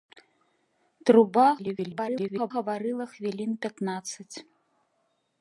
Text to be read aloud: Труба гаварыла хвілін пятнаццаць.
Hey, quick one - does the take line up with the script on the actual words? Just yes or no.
no